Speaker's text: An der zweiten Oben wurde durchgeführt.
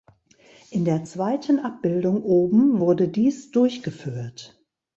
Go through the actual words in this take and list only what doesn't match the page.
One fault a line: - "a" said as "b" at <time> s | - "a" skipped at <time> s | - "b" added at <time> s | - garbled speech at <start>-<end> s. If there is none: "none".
- "An" said as "In" at 0.7 s
- "Abbildung" added at 1.6 s
- "dies" added at 3.1 s